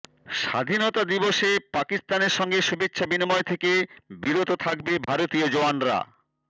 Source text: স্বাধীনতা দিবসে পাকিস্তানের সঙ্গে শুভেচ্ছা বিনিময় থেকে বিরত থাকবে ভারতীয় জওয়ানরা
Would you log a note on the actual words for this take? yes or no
no